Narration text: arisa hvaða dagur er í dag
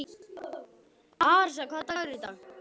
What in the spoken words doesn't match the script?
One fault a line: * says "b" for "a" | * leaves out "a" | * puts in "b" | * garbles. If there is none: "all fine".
all fine